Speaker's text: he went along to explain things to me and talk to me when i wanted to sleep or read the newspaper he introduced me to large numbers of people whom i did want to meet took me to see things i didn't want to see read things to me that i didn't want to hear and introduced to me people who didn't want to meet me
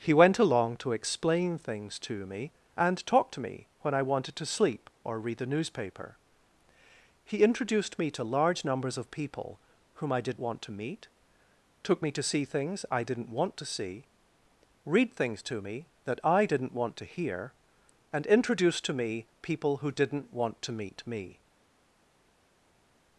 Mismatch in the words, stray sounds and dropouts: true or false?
false